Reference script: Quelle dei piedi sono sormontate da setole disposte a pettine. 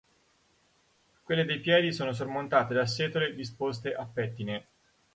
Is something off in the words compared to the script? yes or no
no